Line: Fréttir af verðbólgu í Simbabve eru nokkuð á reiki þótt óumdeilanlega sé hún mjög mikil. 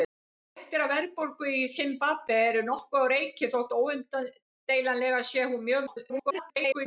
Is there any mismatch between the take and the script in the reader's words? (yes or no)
yes